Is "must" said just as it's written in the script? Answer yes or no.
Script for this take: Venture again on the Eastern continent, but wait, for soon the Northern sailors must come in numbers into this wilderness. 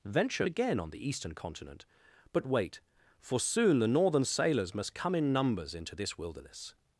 yes